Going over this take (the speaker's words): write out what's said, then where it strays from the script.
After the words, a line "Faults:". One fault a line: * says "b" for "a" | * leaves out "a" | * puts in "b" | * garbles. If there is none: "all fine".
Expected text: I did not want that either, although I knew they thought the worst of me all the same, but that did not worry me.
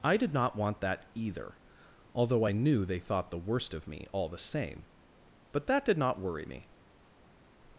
I did not want that either, although I knew they thought the worst of me all the same, but that did not worry me.
Faults:
all fine